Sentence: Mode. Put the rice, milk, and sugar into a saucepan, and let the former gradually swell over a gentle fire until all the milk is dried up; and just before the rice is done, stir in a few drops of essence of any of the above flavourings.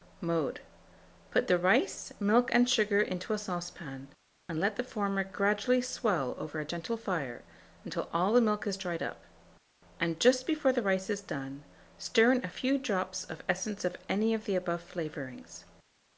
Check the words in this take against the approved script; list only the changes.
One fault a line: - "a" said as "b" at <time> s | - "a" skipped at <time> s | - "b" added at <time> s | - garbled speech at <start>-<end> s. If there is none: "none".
none